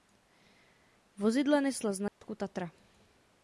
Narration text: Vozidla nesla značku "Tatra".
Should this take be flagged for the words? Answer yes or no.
no